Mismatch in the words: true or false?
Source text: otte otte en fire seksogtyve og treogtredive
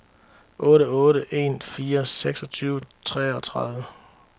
false